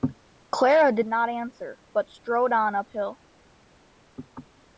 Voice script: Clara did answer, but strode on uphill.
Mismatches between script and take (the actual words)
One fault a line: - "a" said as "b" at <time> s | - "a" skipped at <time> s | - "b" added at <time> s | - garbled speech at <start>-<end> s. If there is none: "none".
- "not" added at 1.1 s